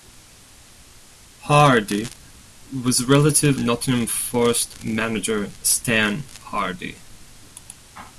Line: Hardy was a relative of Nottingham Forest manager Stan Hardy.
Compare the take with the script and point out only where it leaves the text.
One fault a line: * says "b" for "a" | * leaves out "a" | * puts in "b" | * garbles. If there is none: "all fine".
* leaves out "of"